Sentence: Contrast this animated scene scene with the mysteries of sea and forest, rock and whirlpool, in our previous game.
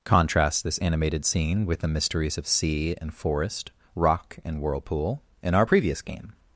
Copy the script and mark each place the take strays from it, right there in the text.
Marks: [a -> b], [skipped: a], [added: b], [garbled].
Contrast this animated scene [skipped: scene] with the mysteries of sea and forest, rock and whirlpool, in our previous game.